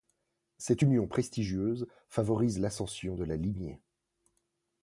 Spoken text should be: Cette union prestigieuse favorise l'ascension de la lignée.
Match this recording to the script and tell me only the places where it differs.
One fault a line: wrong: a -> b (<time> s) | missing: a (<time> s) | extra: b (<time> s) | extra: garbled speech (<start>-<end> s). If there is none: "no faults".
no faults